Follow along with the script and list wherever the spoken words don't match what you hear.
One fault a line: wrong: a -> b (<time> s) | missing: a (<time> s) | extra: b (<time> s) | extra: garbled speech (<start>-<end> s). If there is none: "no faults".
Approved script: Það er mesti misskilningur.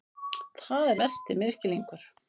no faults